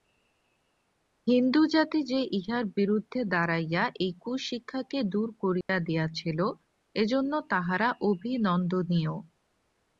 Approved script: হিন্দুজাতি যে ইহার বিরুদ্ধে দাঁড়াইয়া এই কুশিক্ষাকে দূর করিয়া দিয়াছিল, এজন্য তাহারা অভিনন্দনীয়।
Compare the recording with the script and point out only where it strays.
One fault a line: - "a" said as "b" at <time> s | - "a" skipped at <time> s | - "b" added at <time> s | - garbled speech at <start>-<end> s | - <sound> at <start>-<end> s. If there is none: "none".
- dropout at 5.6-5.7 s